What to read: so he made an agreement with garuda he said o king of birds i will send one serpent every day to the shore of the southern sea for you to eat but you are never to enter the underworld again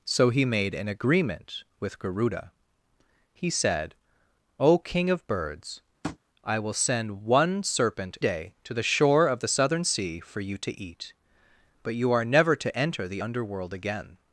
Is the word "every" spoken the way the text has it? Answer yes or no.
no